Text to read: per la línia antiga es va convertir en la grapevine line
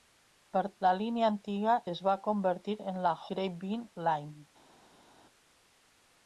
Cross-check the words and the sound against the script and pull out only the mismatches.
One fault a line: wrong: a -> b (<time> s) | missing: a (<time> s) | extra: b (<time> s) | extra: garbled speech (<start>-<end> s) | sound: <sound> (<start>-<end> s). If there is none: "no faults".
no faults